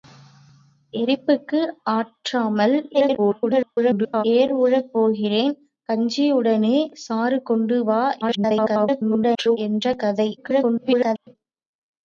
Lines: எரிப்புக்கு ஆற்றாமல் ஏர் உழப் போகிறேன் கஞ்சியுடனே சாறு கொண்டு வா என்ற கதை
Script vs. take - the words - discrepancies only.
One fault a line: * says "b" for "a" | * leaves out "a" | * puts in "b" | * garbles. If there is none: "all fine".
* garbles
* garbles
* garbles